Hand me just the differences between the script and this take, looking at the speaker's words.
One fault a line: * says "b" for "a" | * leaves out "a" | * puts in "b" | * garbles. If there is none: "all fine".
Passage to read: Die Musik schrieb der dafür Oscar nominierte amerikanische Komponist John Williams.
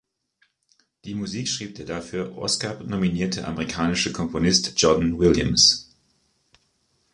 all fine